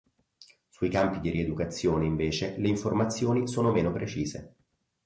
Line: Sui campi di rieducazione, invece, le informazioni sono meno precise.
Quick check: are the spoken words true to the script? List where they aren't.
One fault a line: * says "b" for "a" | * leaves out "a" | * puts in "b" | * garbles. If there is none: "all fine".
all fine